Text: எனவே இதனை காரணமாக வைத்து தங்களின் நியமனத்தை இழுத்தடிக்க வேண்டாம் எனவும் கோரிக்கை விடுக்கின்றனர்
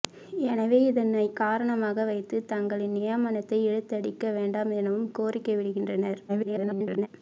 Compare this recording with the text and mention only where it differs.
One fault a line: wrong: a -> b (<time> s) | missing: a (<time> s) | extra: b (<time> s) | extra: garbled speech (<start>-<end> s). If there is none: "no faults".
extra: garbled speech (6.3-7.1 s)